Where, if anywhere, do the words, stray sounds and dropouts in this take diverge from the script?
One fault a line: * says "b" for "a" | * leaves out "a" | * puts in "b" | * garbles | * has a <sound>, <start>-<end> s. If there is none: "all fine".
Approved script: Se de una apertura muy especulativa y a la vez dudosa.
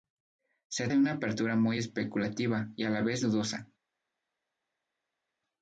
all fine